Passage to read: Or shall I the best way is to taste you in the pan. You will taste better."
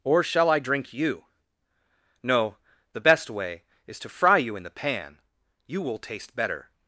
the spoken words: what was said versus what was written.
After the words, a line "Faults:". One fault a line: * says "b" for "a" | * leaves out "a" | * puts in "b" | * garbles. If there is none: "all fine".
Or shall I drink you? No, the best way is to fry you in the pan. You will taste better."
Faults:
* puts in "drink you No"
* says "fry" for "taste"